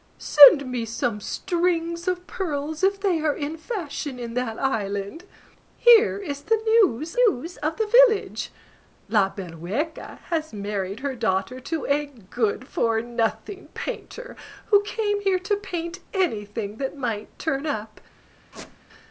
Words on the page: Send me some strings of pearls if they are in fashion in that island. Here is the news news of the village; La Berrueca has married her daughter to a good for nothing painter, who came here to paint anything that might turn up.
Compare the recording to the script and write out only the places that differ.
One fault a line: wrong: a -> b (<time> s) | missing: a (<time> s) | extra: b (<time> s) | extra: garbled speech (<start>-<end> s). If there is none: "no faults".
no faults